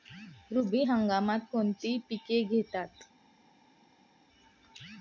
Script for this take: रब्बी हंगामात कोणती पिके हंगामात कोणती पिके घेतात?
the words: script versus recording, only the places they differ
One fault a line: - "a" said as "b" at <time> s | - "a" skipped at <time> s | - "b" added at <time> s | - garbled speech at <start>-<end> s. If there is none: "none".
- "हंगामात कोणती पिके" skipped at 2.4 s